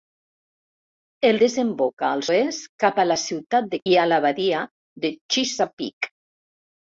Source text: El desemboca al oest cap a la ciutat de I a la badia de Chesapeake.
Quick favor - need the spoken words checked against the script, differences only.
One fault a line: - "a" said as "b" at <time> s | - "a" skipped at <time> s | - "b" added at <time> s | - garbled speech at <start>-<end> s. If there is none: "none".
none